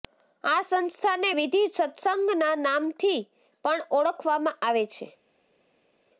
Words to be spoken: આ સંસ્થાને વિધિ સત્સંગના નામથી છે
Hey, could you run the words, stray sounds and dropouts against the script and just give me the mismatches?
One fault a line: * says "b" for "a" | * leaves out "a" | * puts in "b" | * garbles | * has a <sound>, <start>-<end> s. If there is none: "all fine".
* puts in "પણ ઓળખવામાં આવે"